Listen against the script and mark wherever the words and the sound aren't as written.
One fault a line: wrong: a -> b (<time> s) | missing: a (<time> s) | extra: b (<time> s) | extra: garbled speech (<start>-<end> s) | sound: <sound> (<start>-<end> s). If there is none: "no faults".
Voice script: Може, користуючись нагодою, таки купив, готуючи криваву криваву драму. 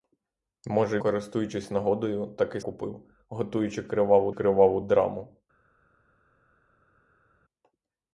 no faults